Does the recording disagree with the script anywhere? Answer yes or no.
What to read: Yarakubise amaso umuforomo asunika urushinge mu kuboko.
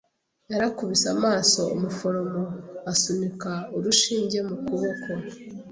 no